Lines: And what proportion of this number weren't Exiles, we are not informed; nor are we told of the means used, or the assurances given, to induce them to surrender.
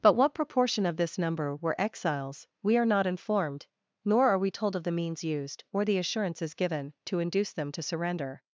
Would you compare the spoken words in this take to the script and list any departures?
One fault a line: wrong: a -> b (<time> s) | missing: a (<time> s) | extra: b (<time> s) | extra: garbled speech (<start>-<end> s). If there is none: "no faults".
wrong: And -> But (0.0 s)
wrong: weren't -> were (1.6 s)